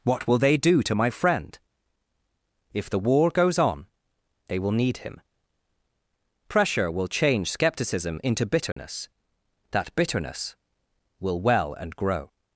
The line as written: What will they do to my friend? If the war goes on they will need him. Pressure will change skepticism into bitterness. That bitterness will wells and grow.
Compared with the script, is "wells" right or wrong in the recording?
wrong